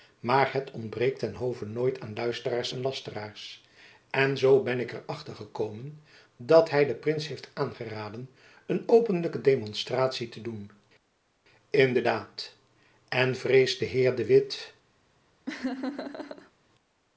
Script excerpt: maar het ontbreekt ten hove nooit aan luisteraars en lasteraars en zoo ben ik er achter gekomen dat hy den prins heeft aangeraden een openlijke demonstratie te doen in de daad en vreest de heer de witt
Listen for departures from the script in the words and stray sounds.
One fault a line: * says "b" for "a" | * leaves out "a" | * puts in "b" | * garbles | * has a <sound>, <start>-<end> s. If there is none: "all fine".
* has a laugh, 15.5-16.5 s